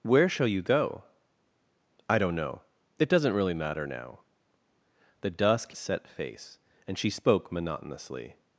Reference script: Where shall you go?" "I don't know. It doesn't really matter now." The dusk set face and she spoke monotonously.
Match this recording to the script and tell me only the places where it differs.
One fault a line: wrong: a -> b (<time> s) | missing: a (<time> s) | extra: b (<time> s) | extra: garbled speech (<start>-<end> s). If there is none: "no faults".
no faults